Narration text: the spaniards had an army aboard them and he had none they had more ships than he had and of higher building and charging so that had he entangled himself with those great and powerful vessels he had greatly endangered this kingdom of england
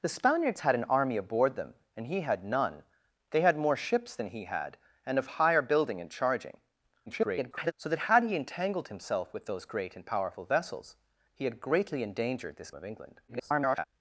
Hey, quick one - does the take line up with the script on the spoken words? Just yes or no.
no